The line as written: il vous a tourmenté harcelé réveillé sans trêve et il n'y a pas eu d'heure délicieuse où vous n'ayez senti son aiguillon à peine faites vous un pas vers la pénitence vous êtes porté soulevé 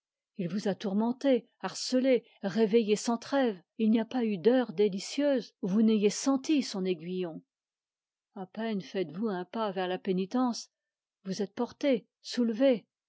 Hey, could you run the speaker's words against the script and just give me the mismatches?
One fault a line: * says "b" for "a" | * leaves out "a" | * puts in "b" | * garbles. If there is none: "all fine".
all fine